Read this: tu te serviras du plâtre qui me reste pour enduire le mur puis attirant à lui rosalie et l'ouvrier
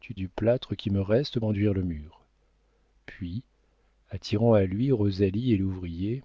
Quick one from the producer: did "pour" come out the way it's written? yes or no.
no